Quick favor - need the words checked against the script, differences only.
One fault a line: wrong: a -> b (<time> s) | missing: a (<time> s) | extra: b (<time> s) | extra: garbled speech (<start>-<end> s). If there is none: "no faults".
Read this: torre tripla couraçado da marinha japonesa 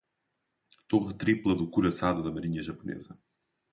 extra: do (1.5 s)